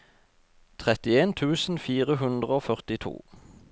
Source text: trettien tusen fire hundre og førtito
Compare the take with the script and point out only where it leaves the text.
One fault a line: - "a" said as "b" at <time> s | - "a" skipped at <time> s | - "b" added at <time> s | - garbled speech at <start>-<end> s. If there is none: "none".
none